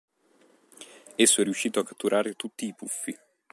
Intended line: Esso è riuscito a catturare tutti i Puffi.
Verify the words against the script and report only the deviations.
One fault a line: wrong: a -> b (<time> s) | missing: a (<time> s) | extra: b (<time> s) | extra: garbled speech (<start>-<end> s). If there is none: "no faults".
no faults